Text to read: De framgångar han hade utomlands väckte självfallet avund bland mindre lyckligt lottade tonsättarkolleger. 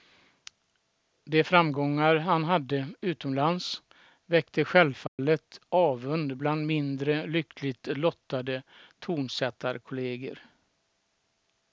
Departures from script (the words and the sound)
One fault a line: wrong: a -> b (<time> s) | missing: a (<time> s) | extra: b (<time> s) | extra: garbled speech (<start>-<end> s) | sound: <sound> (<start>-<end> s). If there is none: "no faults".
sound: dropout (5.1-5.2 s)